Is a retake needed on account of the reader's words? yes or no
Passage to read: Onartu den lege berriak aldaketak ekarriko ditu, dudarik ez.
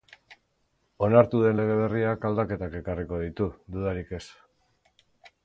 no